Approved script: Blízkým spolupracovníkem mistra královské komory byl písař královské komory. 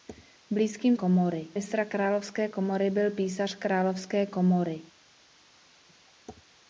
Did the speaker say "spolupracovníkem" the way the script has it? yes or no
no